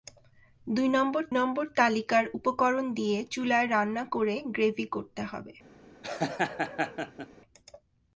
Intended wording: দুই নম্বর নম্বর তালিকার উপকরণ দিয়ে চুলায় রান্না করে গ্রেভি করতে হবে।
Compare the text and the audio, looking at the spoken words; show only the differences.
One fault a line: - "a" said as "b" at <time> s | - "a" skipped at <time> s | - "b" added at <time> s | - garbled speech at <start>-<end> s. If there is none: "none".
none